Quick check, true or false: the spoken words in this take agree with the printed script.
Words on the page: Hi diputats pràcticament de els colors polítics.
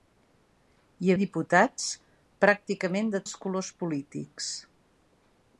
true